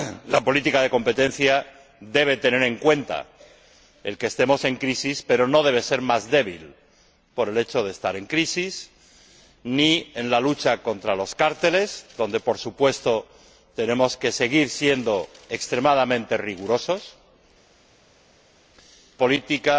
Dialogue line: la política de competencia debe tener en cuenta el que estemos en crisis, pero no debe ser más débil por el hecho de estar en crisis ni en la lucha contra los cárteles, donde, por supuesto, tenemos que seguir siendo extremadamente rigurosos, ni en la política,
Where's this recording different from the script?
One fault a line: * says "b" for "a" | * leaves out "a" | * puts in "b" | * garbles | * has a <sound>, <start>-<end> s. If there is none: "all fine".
* leaves out "ni en la"